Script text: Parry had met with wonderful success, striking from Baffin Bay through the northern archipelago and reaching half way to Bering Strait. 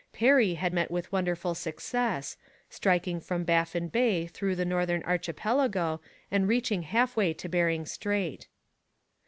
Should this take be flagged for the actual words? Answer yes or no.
no